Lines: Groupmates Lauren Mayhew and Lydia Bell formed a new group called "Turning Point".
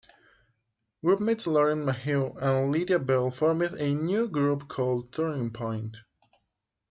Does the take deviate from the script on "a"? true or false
false